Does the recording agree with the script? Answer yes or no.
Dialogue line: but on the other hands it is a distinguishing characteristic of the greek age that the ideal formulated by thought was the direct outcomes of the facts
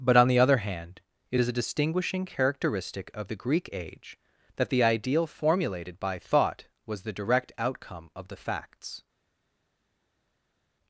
no